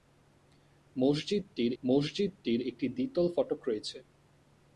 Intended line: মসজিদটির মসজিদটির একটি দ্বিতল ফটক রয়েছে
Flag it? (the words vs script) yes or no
no